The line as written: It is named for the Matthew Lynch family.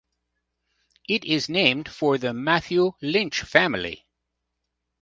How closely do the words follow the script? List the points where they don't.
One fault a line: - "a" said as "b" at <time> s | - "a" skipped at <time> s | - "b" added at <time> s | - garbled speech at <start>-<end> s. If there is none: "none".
none